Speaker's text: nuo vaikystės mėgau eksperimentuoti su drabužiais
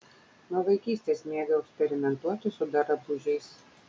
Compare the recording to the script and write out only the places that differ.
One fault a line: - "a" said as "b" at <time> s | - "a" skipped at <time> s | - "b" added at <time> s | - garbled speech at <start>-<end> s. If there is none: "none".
none